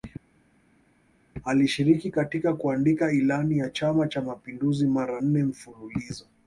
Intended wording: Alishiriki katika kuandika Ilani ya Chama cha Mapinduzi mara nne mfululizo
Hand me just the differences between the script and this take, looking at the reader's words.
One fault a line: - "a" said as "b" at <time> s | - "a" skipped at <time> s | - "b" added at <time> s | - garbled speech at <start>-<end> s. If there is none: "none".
none